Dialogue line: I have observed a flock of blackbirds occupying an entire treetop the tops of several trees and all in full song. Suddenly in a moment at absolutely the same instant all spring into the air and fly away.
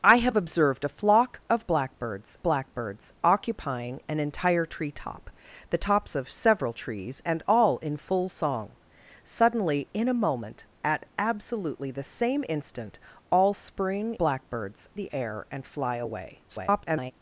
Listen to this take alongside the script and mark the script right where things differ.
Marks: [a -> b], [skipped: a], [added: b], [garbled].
I have observed a flock of blackbirds [added: blackbirds] occupying an entire treetop the tops of several trees and all in full song. Suddenly in a moment at absolutely the same instant all spring [into -> blackbirds] the air and fly away. [garbled]